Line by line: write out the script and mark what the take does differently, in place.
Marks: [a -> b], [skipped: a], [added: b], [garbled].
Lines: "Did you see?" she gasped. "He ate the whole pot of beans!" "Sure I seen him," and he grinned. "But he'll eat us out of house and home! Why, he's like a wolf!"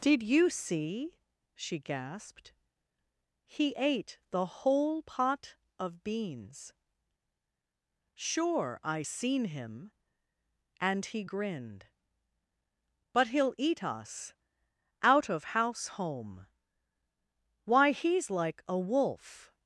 "Did you see?" she gasped. "He ate the whole pot of beans!" "Sure I seen him," and he grinned. "But he'll eat us out of house [skipped: and] home! Why, he's like a wolf!"